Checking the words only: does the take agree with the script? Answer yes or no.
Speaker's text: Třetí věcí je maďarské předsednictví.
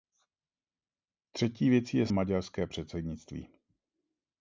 yes